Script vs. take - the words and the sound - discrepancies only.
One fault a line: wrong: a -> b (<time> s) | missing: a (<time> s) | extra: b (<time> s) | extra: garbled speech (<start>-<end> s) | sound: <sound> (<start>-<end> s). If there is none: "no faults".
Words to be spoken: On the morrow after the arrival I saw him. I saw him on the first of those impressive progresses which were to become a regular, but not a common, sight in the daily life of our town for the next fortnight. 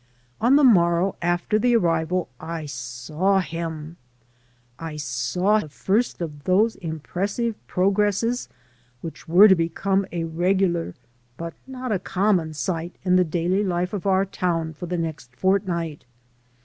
missing: him on (5.6 s)